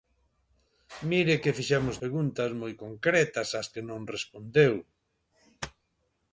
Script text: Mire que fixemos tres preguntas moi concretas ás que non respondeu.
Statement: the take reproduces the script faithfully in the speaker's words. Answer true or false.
false